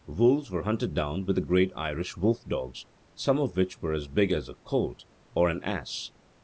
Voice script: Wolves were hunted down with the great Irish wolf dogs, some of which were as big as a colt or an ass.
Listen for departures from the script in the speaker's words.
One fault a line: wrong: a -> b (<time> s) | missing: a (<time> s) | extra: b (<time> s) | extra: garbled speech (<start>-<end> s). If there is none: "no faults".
no faults